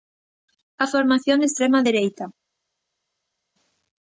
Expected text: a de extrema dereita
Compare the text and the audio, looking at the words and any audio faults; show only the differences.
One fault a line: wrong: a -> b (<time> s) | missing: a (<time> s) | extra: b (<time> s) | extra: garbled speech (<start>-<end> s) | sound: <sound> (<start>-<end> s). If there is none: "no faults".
extra: formación (0.9 s)